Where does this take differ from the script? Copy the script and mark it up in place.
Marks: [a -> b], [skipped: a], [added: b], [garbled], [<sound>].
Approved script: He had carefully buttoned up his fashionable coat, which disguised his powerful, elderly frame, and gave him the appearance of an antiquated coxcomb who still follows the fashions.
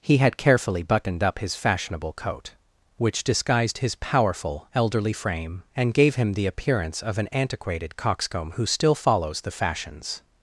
He had carefully buttoned up his fashionable coat, which disguised his powerful, elderly frame, and gave him the appearance of an antiquated coxcomb who still follows the fashions.